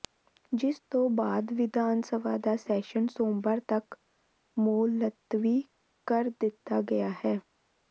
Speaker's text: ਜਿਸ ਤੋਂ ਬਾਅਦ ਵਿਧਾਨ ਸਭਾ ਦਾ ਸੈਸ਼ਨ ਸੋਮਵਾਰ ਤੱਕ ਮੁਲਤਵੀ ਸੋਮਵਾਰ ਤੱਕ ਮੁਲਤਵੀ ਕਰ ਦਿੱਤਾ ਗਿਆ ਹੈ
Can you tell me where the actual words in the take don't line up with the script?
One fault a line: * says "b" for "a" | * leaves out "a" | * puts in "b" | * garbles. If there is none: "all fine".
* leaves out "ਸੋਮਵਾਰ ਤੱਕ ਮੁਲਤਵੀ"